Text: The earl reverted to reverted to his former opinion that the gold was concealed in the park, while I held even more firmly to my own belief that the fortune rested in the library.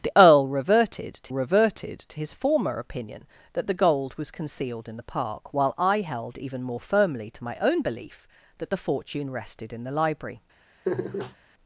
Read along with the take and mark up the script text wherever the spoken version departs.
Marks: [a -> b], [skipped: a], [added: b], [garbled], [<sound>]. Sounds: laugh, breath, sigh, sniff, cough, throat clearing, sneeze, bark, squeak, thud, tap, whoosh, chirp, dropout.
The earl reverted to reverted to his former opinion that the gold was concealed in the park, while I held even more firmly to my own belief that the fortune rested in the library. [laugh]